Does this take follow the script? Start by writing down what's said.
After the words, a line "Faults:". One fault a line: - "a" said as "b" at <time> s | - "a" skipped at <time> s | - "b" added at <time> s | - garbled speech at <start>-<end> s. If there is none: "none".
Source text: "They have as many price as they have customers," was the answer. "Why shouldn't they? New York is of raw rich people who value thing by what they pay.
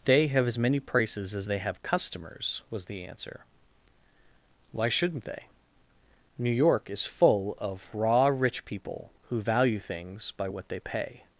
"They have as many prices as they have customers," was the answer. "Why shouldn't they? New York is full of raw rich people who value things by what they pay.
Faults:
- "price" said as "prices" at 0.8 s
- "full" added at 7.0 s
- "thing" said as "things" at 9.8 s